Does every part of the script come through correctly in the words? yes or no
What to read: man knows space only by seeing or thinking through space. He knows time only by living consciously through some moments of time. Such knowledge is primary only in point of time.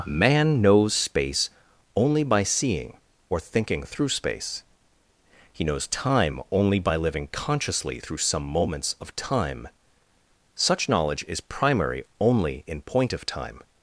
yes